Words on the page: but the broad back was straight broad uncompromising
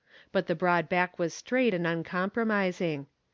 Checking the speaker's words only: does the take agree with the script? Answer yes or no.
no